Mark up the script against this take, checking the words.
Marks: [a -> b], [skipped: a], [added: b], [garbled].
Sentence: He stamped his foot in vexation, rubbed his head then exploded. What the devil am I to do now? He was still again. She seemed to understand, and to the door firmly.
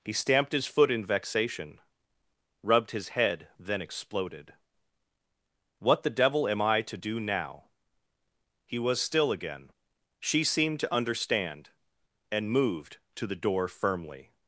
He stamped his foot in vexation, rubbed his head then exploded. What the devil am I to do now? He was still again. She seemed to understand, and [added: moved] to the door firmly.